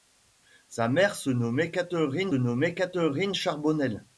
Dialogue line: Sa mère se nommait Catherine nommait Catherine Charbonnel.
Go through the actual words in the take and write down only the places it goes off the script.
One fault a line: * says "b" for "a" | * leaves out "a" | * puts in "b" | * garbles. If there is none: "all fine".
all fine